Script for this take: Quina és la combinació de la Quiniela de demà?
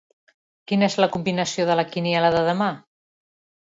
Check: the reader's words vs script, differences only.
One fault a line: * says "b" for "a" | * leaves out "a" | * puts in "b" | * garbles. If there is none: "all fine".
all fine